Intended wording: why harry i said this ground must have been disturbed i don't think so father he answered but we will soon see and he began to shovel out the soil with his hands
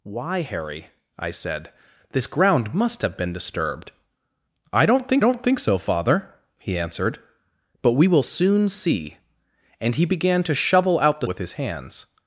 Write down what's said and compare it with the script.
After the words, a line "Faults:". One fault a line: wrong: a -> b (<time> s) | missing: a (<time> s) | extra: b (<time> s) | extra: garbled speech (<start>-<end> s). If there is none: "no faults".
why harry i said this ground must have been disturbed i don't think don't think so father he answered but we will soon see and he began to shovel out the with his hands
Faults:
extra: don't think (5.2 s)
missing: soil (11.3 s)